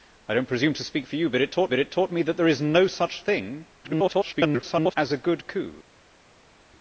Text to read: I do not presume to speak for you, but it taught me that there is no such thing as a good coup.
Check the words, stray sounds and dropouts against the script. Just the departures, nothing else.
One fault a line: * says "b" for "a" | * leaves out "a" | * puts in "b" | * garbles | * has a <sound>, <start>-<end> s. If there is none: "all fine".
* puts in "but it taught"
* garbles